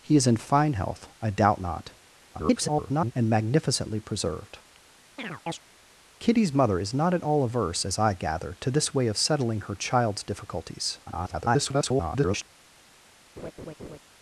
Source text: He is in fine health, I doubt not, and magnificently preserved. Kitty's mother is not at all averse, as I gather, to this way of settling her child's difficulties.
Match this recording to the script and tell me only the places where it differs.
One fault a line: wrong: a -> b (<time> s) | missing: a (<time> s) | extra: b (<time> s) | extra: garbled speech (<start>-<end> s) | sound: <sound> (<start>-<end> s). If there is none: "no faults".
extra: garbled speech (2.3-3.1 s)
sound: chirp (5.2-5.6 s)
extra: garbled speech (11.1-12.5 s)
sound: laugh (13.4-14.0 s)